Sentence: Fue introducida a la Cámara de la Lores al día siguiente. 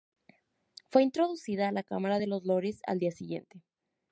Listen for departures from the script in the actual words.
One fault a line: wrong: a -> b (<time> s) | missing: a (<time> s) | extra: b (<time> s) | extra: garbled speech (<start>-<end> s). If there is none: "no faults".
wrong: la -> los (2.3 s)